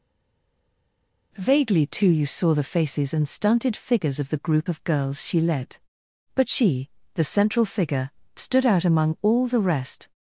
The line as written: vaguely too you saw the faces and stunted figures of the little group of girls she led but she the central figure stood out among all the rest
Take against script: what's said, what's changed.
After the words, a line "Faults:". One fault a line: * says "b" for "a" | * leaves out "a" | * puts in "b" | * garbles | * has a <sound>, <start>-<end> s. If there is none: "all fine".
vaguely too you saw the faces and stunted figures of the group of girls she led but she the central figure stood out among all the rest
Faults:
* leaves out "little"